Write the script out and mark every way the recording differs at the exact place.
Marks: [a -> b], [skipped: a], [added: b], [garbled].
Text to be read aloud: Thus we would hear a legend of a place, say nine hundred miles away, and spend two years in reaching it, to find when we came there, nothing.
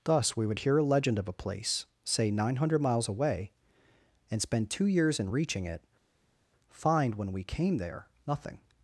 Thus we would hear a legend of a place, say nine hundred miles away, and spend two years in reaching it, [skipped: to] find when we came there, nothing.